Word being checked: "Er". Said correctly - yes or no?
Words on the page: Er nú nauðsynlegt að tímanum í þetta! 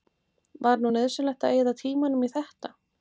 no